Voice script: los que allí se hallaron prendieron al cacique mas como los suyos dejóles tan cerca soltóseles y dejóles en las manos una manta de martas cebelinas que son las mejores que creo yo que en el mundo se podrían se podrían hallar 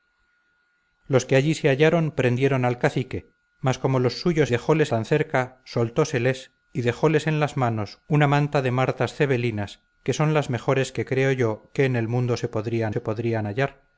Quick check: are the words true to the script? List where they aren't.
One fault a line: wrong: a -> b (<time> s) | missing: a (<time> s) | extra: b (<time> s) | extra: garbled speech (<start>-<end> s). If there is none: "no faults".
no faults